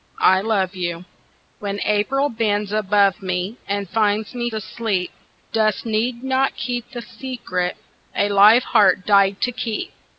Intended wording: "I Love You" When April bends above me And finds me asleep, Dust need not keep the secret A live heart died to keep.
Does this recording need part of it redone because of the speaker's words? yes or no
no